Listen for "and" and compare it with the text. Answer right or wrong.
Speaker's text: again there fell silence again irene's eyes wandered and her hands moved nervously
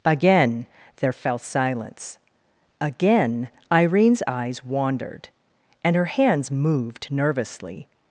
right